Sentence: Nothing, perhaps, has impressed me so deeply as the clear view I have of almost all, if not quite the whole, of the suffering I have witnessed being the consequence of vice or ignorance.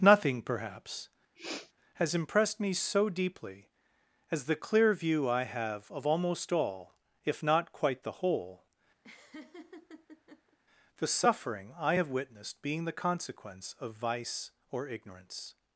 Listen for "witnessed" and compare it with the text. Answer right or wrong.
right